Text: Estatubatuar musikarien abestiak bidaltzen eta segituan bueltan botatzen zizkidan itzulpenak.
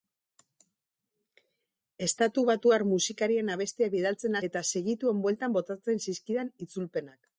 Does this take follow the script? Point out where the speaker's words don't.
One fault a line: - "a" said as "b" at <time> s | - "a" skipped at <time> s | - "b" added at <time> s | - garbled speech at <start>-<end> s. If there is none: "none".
none